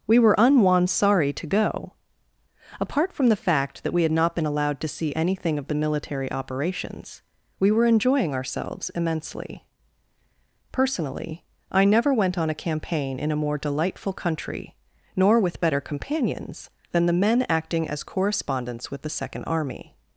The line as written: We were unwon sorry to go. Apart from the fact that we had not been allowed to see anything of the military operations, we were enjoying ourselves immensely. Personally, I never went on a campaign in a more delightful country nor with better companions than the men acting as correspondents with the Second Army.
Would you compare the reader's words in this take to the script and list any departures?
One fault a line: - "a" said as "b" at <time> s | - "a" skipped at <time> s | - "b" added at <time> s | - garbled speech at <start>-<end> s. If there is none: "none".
none